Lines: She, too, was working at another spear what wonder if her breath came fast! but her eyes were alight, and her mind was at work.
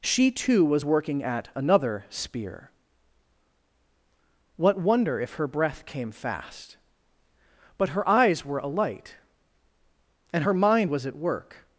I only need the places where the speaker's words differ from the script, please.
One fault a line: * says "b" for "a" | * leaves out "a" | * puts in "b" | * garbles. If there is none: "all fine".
all fine